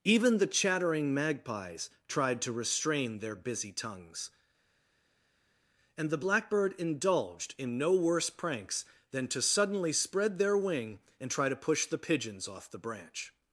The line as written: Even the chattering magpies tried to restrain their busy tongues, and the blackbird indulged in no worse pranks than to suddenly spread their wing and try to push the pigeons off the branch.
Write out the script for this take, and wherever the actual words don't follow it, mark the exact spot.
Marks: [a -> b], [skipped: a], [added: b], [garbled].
Even the chattering magpies tried to restrain their busy tongues, and the blackbird indulged in no worse pranks than to suddenly spread their wing and try to push the pigeons off the branch.